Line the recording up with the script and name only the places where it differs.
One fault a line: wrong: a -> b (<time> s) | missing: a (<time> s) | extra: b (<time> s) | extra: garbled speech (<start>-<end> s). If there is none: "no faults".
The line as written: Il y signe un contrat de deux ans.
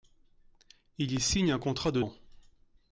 missing: deux (2.0 s)